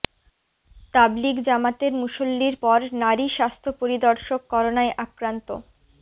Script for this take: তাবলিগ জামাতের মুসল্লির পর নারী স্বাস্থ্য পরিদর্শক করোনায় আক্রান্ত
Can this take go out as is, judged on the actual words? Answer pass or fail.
pass